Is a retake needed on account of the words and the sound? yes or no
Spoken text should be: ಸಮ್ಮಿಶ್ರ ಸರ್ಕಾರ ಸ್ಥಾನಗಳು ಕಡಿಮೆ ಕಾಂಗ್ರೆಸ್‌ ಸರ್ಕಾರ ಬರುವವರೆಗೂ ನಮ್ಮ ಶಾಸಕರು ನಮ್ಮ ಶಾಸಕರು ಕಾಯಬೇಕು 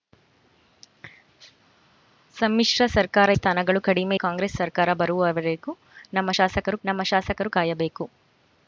no